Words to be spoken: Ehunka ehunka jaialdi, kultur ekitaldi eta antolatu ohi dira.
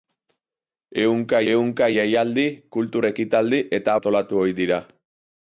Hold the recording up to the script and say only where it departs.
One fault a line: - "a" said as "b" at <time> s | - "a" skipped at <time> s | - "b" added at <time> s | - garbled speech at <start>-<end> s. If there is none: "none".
none